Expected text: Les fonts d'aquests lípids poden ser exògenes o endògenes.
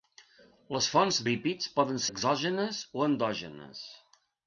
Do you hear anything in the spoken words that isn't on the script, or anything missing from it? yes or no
yes